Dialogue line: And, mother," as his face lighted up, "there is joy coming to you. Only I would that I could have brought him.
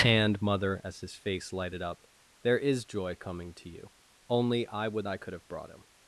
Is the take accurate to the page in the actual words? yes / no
no